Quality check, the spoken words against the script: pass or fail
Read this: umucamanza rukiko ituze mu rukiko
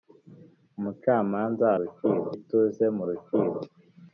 pass